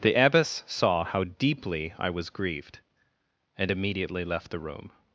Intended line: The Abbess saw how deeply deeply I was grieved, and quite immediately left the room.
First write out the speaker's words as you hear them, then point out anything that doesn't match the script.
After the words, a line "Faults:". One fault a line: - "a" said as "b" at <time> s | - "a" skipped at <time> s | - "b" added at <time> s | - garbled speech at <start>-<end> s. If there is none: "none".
The Abbess saw how deeply I was grieved, and immediately left the room.
Faults:
- "deeply" skipped at 1.9 s
- "quite" skipped at 3.7 s